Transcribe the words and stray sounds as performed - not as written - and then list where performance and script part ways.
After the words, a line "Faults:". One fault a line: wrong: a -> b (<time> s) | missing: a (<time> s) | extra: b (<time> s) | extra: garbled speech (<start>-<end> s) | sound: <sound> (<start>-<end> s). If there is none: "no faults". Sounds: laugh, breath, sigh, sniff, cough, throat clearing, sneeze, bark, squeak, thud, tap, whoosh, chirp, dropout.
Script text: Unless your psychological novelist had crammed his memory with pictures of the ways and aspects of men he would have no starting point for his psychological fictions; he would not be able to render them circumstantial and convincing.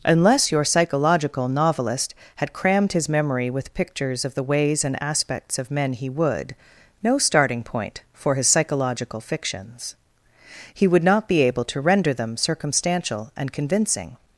Unless your psychological novelist had crammed his memory with pictures of the ways and aspects of men he would no starting point for his psychological fictions; he would not be able to render them circumstantial and convincing.
Faults:
missing: have (6.5 s)